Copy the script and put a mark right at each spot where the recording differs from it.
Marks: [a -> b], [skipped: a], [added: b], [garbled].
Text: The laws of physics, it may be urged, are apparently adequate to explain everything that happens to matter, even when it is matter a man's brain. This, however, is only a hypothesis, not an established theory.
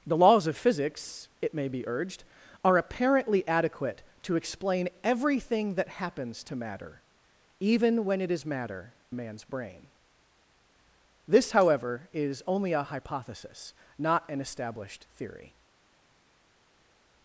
The laws of physics, it may be urged, are apparently adequate to explain everything that happens to matter, even when it is matter a man's brain. This, however, is only a hypothesis, not an established theory.